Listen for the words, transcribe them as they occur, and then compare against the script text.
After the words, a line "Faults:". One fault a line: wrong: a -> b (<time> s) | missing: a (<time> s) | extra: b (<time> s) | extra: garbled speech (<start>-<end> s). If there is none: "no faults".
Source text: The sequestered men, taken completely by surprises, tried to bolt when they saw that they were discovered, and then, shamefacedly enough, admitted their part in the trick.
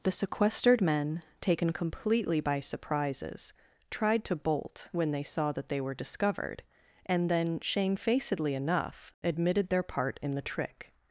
The sequestered men, taken completely by surprises, tried to bolt when they saw that they were discovered, and then, shamefacedly enough, admitted their part in the trick.
Faults:
no faults